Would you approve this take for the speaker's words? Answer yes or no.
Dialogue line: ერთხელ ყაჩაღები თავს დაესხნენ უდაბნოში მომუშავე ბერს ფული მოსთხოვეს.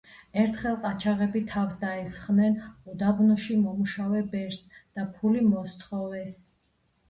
no